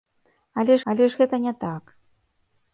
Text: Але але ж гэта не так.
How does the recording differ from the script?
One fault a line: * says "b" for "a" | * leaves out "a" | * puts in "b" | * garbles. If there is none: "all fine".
all fine